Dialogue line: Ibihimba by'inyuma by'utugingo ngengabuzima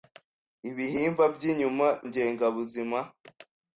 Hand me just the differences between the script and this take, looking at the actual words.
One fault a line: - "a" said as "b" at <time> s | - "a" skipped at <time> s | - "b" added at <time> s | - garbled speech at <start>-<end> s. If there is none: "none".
- "by'utugingo" skipped at 1.9 s